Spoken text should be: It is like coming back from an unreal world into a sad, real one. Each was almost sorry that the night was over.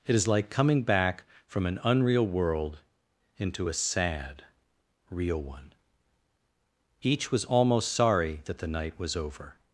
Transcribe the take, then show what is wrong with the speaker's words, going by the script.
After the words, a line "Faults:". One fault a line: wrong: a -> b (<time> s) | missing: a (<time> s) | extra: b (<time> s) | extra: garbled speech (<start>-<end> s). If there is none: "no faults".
It is like coming back from an unreal world into a sad, real one. Each was almost sorry that the night was over.
Faults:
no faults